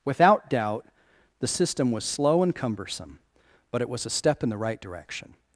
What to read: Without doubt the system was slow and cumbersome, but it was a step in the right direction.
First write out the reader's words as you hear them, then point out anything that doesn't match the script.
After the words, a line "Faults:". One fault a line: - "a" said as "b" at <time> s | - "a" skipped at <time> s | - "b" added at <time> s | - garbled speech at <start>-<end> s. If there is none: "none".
Without doubt the system was slow and cumbersome, but it was a step in the right direction.
Faults:
none